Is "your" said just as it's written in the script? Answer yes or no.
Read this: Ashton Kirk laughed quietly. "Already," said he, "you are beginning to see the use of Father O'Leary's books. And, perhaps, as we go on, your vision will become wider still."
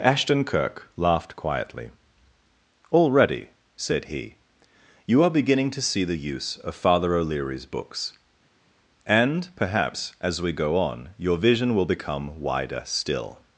yes